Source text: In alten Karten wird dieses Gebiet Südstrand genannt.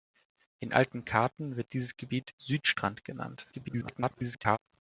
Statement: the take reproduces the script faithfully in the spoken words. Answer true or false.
false